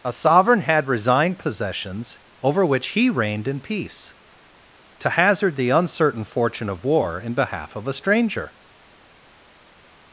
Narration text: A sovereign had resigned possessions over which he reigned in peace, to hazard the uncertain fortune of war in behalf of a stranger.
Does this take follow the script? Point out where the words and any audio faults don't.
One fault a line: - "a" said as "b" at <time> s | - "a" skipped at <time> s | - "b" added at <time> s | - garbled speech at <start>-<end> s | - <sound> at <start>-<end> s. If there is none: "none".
none